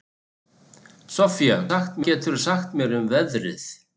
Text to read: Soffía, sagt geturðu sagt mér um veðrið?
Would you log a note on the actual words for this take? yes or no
no